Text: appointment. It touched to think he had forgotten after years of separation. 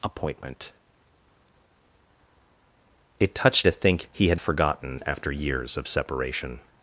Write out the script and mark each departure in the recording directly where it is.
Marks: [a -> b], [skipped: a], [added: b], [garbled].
appointment. It touched to think he had forgotten after years of separation.